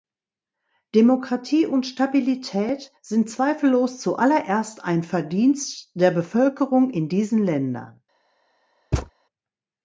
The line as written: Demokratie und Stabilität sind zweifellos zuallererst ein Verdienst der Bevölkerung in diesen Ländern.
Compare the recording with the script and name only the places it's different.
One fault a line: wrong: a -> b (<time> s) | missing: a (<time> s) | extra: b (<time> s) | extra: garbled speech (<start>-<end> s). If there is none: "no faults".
no faults